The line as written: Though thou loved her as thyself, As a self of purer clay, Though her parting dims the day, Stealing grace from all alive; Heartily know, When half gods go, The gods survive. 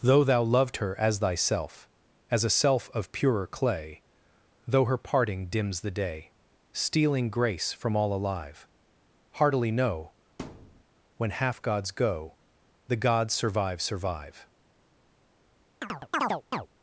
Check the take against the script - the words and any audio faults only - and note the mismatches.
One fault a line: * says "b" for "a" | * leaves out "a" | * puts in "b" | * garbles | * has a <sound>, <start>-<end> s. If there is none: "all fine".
* has a thud, 10.4-10.8 s
* puts in "survive"
* has a chirp, 15.8-16.7 s